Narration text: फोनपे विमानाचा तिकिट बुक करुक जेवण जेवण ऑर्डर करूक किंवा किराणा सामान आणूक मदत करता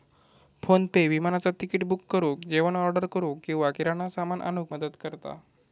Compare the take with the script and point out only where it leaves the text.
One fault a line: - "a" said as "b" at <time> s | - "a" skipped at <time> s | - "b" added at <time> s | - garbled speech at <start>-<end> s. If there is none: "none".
- "जेवण" skipped at 2.8 s